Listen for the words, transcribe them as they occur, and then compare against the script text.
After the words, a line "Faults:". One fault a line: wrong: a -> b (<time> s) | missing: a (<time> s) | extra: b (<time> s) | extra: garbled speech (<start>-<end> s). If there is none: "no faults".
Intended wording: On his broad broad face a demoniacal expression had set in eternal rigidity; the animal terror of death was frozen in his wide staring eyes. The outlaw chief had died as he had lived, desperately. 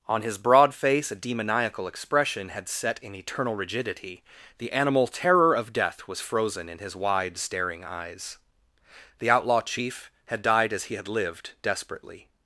On his broad face a demoniacal expression had set in eternal rigidity; the animal terror of death was frozen in his wide staring eyes. The outlaw chief had died as he had lived, desperately.
Faults:
missing: broad (0.7 s)